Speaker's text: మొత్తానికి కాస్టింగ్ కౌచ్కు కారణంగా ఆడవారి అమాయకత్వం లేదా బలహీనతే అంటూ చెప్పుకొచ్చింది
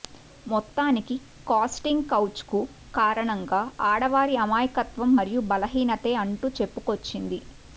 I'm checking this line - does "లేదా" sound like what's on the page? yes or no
no